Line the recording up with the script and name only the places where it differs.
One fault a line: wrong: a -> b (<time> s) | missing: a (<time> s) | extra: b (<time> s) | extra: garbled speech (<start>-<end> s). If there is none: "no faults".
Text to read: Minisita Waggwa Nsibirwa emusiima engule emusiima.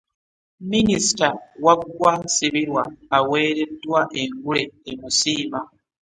wrong: emusiima -> aweereddwa (3.2 s)